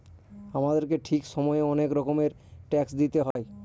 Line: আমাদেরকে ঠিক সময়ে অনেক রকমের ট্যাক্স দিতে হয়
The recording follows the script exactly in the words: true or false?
true